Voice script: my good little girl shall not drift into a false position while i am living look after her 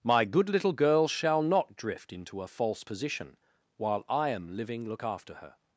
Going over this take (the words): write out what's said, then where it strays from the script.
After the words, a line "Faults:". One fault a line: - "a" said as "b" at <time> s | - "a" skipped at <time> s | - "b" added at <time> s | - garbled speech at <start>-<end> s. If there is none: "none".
my good little girl shall not drift into a false position while i am living look after her
Faults:
none